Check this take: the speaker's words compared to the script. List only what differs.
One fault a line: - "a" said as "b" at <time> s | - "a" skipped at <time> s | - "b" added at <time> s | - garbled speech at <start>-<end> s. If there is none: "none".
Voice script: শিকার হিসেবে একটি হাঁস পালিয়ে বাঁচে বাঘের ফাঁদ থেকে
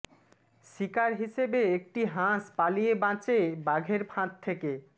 none